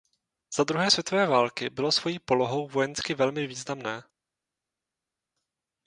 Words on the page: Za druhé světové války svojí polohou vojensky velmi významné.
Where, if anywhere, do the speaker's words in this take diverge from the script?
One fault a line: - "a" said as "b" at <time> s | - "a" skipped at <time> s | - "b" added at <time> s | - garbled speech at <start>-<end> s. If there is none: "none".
- "bylo" added at 1.7 s